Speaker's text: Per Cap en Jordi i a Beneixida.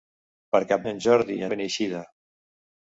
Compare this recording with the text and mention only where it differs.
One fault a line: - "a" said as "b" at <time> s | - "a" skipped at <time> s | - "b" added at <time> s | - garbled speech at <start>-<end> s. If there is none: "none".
none